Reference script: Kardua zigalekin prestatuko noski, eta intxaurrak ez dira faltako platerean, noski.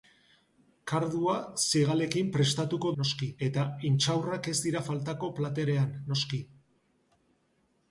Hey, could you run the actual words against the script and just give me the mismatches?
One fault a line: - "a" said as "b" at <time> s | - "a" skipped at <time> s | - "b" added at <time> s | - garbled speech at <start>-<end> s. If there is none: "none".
none